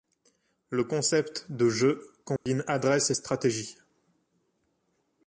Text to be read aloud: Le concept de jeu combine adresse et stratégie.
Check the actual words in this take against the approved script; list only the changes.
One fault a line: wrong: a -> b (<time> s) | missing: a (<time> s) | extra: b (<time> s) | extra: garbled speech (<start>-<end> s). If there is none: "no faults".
no faults